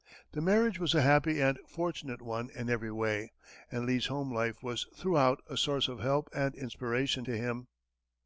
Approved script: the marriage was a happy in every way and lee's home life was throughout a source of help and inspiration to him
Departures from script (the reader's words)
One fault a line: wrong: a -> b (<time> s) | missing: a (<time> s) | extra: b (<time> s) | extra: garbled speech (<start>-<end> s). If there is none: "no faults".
extra: and fortunate one (1.4 s)